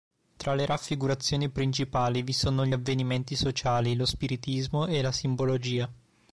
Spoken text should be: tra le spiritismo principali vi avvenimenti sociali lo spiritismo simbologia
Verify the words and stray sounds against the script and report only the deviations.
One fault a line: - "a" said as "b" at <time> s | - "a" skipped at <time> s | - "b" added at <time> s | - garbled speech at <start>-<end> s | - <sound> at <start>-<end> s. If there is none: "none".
- "spiritismo" said as "raffigurazioni" at 0.7 s
- "sono gli" added at 2.3 s
- "e la" added at 4.8 s